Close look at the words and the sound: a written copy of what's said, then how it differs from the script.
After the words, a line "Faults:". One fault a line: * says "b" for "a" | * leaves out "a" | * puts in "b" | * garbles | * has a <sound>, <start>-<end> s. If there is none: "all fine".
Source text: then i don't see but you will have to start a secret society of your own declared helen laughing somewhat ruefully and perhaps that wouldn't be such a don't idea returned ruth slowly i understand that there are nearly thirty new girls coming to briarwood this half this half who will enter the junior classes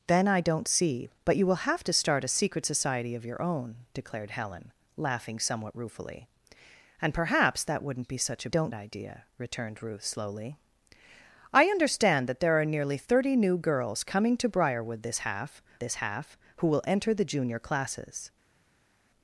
then i don't see but you will have to start a secret society of your own declared helen laughing somewhat ruefully and perhaps that wouldn't be such a don't idea returned ruth slowly i understand that there are nearly thirty new girls coming to briarwood this half this half who will enter the junior classes
Faults:
all fine